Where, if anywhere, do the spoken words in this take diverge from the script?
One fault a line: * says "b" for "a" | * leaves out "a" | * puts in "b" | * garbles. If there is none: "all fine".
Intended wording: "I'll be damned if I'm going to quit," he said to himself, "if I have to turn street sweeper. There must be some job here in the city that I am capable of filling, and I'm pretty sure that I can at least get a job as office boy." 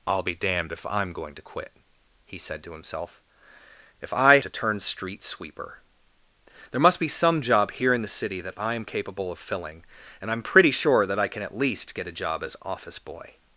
* leaves out "have"